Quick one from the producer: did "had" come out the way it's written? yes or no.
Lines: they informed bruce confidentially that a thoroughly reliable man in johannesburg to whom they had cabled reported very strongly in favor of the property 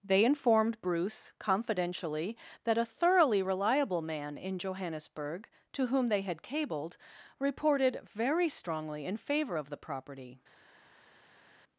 yes